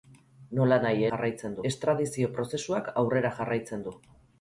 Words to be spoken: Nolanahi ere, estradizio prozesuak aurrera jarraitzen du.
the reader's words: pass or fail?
fail